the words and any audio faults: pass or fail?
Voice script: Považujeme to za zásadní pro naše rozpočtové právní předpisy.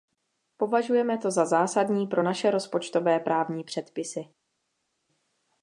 pass